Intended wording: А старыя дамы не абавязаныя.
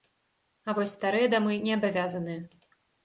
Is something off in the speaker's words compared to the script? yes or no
yes